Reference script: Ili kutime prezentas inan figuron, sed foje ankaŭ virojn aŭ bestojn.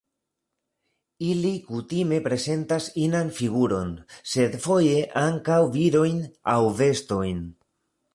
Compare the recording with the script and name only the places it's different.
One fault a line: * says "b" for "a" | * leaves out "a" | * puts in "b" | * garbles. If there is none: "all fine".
all fine